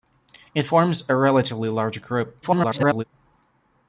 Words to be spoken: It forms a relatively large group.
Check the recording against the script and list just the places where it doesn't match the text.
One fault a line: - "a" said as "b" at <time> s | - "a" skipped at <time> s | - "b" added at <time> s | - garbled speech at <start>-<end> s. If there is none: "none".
- garbled speech at 2.4-3.0 s